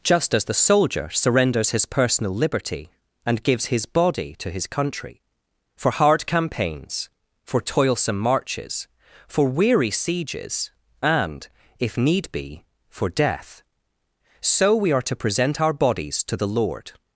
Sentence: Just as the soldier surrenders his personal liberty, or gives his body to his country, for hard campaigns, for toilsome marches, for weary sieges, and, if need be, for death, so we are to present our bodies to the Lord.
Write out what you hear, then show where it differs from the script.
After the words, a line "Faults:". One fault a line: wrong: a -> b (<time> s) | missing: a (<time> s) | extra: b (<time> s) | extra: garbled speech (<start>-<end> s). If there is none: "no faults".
Just as the soldier surrenders his personal liberty, and gives his body to his country, for hard campaigns, for toilsome marches, for weary sieges, and, if need be, for death, so we are to present our bodies to the Lord.
Faults:
wrong: or -> and (3.2 s)